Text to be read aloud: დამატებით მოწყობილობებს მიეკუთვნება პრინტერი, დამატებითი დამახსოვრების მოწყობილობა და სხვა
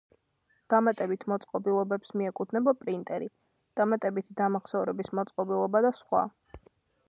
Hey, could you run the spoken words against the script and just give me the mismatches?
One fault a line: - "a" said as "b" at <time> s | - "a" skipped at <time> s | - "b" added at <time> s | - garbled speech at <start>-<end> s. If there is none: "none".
none